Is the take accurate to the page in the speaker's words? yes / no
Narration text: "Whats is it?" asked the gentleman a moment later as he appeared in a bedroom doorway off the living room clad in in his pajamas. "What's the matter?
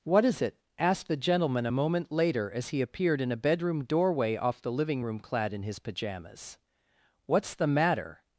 no